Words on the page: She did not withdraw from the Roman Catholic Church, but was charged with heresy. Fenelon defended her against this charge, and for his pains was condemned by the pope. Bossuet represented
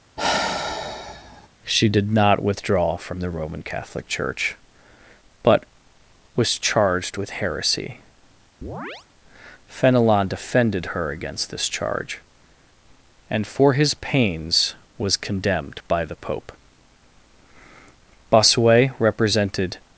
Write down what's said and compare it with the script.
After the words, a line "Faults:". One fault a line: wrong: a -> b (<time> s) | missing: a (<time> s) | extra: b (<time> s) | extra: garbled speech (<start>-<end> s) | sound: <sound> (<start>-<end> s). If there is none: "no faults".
She did not withdraw from the Roman Catholic Church, but was charged with heresy. Fenelon defended her against this charge, and for his pains was condemned by the pope. Bossuet represented
Faults:
sound: sigh (0.2-1.5 s)
sound: chirp (8.6-9.1 s)